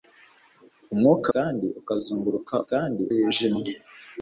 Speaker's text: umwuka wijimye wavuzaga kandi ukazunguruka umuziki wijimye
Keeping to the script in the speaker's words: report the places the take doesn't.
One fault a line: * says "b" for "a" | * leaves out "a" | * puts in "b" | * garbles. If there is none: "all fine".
* leaves out "wijimye wavuzaga"
* says "kandi" for "umuziki"